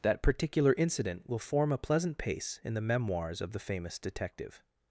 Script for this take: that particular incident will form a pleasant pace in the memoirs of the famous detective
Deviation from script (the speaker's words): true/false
false